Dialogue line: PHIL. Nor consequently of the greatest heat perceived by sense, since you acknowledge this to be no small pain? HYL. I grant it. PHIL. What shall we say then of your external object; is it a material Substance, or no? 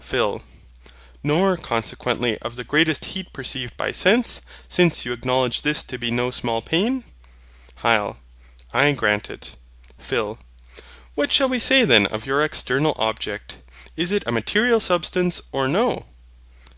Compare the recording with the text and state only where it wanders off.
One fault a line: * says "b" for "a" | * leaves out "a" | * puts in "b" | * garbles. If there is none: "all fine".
all fine